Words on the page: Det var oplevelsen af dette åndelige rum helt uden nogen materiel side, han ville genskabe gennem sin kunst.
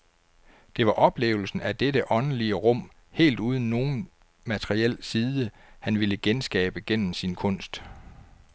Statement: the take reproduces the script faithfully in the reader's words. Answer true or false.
true